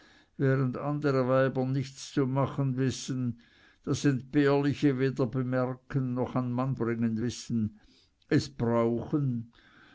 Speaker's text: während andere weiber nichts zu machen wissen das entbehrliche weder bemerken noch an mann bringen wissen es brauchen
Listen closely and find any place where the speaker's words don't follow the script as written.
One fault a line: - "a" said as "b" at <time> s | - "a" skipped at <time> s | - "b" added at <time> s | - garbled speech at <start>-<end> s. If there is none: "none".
none